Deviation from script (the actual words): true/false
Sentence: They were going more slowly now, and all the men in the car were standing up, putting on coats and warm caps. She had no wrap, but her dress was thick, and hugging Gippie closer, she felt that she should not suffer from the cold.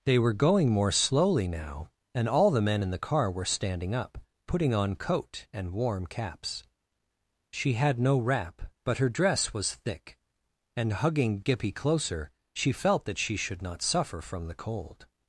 true